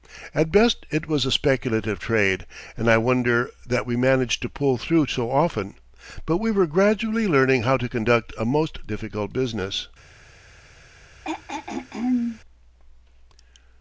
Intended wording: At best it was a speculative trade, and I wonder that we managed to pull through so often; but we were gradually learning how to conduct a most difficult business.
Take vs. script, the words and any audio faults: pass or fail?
fail